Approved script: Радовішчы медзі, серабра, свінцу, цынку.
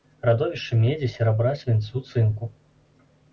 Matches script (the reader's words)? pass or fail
pass